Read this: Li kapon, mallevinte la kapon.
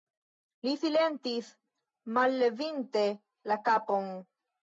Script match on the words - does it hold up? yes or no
no